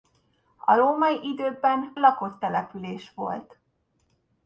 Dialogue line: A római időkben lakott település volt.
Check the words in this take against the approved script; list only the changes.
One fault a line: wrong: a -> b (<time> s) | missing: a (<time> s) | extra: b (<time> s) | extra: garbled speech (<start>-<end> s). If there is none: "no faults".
no faults